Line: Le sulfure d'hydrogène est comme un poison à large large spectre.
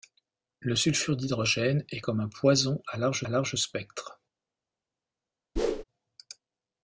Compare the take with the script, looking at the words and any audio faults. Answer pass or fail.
fail